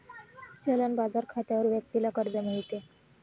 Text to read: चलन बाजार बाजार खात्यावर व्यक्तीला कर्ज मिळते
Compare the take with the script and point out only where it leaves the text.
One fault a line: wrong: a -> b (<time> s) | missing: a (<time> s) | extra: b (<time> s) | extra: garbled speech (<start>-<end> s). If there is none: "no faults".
missing: बाजार (1.2 s)